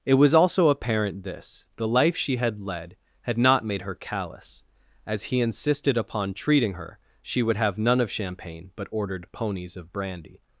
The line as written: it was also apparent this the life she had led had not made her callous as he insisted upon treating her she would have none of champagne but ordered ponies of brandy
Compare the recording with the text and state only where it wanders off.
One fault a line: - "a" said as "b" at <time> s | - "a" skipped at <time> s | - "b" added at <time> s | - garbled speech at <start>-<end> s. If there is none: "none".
none